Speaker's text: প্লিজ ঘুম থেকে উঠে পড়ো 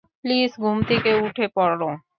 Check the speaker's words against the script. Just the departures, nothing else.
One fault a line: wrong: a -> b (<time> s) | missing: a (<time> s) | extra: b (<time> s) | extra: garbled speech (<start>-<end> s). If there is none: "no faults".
no faults